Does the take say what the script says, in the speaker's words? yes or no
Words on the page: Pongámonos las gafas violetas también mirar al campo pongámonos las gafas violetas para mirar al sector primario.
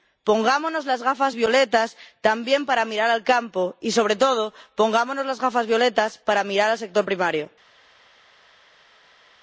no